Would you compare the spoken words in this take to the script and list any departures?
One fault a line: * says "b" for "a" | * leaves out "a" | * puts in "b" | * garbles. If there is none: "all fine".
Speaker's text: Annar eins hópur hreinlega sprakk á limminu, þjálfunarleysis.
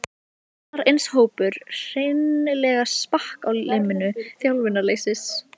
all fine